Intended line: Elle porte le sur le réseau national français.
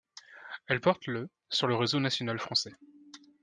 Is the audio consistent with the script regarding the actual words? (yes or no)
yes